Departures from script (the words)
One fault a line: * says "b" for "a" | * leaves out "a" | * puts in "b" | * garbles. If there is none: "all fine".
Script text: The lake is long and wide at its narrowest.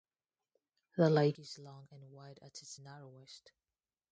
all fine